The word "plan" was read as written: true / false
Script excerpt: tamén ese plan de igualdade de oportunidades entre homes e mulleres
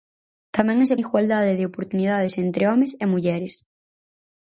false